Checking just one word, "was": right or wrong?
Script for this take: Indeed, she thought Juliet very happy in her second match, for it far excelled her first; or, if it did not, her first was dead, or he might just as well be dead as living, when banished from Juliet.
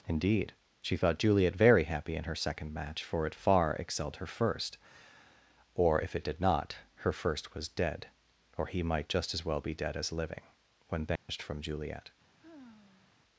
right